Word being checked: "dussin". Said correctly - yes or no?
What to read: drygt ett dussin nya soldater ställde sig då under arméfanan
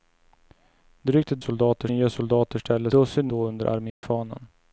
no